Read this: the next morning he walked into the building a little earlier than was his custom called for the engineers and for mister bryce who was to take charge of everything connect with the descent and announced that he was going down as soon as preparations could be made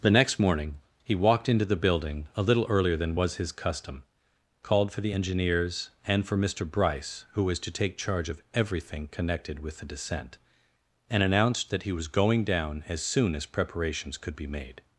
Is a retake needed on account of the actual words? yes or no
yes